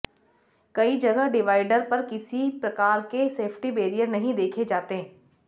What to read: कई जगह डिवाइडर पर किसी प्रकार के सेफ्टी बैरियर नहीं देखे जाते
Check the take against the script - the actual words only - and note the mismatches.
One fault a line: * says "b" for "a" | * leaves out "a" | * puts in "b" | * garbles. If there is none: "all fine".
all fine